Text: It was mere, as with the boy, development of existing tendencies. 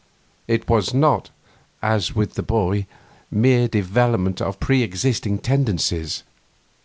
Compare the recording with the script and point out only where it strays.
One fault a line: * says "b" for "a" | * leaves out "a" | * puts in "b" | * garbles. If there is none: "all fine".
* says "not" for "mere"
* puts in "mere"
* puts in "pre"